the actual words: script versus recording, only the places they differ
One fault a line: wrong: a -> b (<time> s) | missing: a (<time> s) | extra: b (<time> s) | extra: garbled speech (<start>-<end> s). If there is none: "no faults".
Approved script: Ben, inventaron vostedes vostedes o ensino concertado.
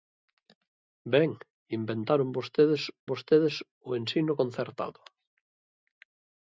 no faults